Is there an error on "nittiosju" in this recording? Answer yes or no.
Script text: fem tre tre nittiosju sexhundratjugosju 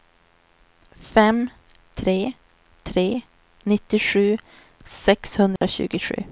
no